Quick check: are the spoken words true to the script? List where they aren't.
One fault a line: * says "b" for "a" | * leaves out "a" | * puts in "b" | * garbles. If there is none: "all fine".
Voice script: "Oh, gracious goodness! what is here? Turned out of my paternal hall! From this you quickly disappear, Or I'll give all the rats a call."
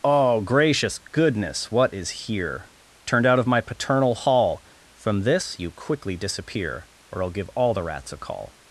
all fine